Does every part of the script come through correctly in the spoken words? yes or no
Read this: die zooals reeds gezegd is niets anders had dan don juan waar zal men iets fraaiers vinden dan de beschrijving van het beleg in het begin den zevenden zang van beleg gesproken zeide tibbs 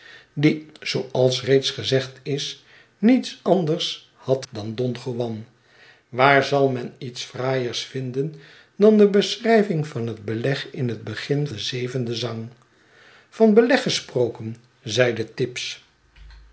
yes